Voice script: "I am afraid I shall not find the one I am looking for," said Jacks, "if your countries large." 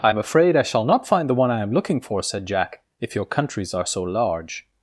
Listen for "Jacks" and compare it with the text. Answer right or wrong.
wrong